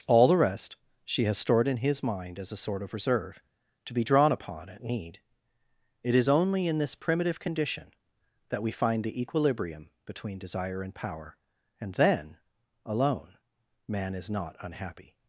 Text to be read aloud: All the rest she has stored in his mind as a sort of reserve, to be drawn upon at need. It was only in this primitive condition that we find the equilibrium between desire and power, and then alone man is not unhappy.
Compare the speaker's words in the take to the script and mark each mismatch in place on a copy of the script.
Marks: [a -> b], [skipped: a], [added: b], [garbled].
All the rest she has stored in his mind as a sort of reserve, to be drawn upon at need. It [was -> is] only in this primitive condition that we find the equilibrium between desire and power, and then alone man is not unhappy.